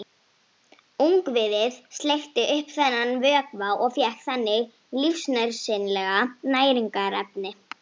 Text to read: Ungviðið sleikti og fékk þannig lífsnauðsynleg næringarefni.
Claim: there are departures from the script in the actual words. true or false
true